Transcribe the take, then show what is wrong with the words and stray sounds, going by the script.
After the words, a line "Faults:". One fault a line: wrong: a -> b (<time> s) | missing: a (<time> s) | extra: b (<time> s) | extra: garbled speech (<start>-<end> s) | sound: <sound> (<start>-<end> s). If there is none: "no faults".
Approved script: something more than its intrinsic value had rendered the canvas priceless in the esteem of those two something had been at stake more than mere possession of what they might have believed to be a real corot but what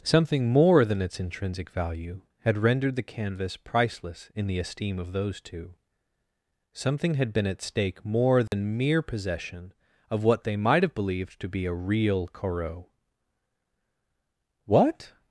something more than its intrinsic value had rendered the canvas priceless in the esteem of those two something had been at stake more than mere possession of what they might have believed to be a real corot what
Faults:
sound: dropout (8.5-8.5 s)
missing: but (12.9 s)